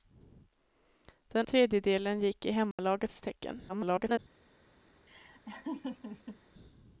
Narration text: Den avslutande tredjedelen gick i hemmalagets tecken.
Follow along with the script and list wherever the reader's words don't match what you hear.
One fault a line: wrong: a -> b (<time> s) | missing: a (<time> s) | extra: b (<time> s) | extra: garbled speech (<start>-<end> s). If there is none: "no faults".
missing: avslutande (1.5 s)
extra: garbled speech (3.7-4.2 s)